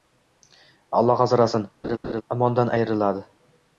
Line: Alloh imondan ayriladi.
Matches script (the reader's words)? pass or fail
fail